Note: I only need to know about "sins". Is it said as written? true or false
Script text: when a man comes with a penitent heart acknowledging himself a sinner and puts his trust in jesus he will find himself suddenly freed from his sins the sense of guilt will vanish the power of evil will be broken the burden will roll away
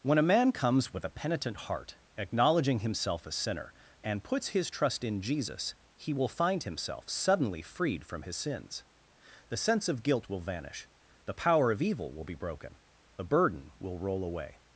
true